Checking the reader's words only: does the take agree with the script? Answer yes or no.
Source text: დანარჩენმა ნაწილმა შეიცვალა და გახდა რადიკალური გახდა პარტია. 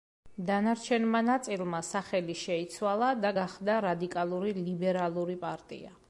no